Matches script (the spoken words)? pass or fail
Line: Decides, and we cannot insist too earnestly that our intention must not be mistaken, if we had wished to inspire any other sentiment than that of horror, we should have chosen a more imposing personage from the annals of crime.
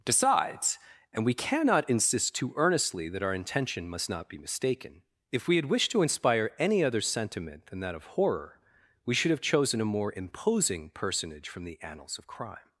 pass